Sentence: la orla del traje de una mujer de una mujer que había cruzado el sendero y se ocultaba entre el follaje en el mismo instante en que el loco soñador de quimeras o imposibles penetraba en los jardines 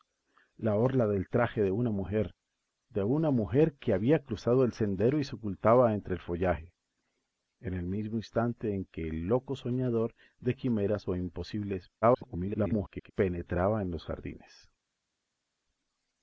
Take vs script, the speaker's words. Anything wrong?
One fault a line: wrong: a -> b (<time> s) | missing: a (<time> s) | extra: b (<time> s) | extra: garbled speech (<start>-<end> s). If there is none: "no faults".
extra: garbled speech (12.0-13.1 s)